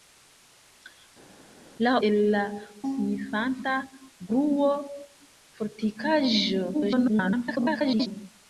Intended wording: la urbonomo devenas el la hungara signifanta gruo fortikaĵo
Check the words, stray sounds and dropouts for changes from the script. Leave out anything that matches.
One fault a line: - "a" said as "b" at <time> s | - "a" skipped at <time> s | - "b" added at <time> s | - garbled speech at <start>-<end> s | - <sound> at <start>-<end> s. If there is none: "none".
- "urbonomo devenas" skipped at 1.9 s
- "hungara" skipped at 2.4 s
- garbled speech at 6.7-8.1 s